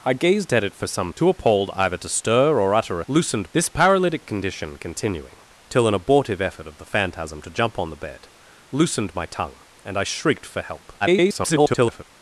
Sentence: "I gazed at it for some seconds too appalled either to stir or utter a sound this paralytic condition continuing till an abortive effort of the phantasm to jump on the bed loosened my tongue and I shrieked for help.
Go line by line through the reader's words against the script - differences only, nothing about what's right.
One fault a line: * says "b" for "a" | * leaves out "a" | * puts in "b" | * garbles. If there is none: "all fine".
* leaves out "seconds"
* says "loosened" for "sound"
* garbles